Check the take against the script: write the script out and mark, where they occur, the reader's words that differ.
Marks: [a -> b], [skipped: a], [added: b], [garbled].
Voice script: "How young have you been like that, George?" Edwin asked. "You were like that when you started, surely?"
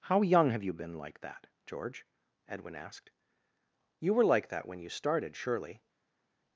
"How young have you been like that, George?" Edwin asked. "You were like that when you started, surely?"